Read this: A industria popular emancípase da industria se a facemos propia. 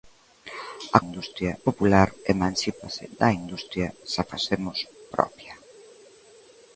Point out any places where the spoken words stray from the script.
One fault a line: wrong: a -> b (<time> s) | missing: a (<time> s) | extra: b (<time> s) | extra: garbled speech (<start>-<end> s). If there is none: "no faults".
no faults